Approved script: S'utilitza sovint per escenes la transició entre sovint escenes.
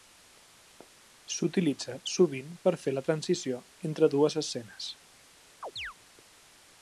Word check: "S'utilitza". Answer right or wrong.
right